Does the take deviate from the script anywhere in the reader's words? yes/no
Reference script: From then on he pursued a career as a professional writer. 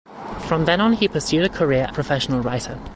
yes